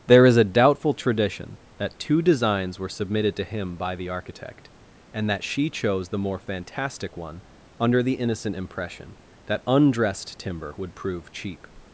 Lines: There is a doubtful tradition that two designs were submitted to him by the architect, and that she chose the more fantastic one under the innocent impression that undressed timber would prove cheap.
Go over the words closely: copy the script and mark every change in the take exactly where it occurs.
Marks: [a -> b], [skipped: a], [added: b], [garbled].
There is a doubtful tradition that two designs were submitted to him by the architect, and that she chose the more fantastic one under the innocent impression that undressed timber would prove cheap.